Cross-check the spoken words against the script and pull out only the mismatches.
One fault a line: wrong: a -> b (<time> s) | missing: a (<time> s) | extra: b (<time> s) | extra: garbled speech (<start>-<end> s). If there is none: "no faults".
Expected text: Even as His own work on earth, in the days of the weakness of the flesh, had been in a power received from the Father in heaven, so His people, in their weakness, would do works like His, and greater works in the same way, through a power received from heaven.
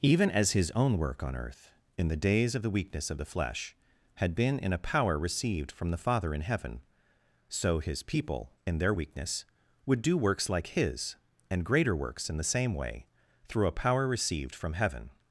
no faults